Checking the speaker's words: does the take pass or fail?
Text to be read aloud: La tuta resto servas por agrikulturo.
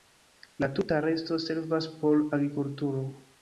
pass